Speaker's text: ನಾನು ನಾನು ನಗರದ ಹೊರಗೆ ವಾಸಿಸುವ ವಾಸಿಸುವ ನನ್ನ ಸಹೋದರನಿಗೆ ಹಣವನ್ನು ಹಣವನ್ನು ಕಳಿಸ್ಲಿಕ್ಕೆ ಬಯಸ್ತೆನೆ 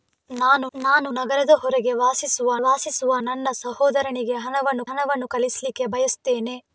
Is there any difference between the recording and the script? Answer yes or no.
no